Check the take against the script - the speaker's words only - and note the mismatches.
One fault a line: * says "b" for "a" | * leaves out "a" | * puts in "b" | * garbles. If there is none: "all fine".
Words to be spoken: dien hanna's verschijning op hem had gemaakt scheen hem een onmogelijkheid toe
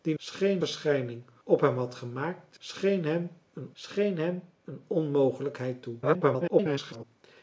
* says "scheen" for "hanna's"
* puts in "scheen hem een"
* garbles